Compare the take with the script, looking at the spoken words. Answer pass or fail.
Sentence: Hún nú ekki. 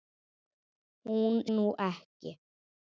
pass